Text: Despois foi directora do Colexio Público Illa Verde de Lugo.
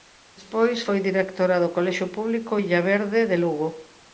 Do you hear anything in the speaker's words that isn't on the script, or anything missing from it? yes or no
no